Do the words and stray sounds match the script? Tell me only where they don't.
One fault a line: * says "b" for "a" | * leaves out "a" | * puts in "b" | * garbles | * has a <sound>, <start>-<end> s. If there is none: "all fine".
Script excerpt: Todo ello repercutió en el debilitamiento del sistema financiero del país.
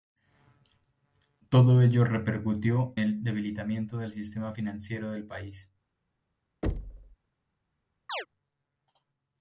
* leaves out "en"
* has a thud, 6.6-7.2 s
* has a chirp, 8.1-8.3 s